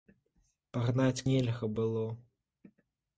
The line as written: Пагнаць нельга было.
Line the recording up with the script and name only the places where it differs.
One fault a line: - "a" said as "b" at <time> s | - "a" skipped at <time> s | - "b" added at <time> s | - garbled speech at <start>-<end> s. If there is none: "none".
none